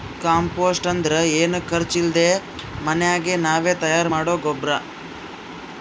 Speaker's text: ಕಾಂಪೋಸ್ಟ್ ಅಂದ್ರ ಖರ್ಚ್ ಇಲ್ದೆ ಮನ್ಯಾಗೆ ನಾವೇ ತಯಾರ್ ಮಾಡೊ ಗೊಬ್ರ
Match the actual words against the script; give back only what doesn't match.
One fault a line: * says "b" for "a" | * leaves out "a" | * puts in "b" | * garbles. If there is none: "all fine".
* puts in "ಏನು"